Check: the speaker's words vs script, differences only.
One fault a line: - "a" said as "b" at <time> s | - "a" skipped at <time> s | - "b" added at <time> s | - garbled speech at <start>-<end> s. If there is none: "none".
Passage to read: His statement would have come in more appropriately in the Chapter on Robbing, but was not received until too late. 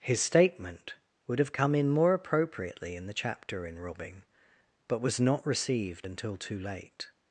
- "on" said as "in" at 3.7 s